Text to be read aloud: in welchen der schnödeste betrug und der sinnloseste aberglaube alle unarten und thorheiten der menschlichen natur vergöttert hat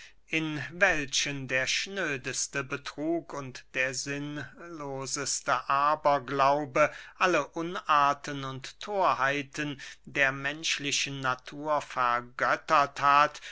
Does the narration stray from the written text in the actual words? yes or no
no